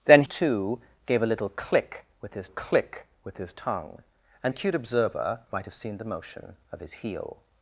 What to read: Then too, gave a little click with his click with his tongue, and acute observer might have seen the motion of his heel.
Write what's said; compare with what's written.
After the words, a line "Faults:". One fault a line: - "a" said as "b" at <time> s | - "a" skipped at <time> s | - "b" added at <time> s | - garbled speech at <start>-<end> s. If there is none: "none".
Then too, gave a little click with his click with his tongue, and acute observer might have seen the motion of his heel.
Faults:
none